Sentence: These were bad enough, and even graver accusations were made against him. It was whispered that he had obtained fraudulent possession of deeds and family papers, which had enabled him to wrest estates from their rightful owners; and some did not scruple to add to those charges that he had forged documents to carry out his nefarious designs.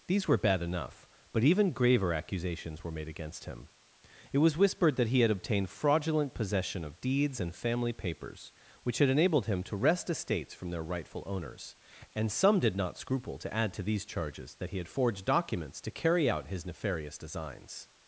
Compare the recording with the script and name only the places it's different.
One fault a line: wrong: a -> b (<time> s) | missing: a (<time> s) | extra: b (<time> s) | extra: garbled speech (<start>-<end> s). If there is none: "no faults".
wrong: and -> but (1.3 s)
wrong: those -> these (13.8 s)